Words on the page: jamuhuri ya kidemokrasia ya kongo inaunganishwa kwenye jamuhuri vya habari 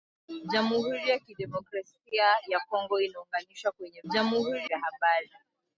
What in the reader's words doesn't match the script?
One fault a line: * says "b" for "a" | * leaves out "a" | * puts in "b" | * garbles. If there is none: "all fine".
all fine